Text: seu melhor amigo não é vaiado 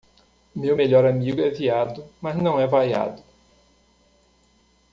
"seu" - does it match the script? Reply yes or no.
no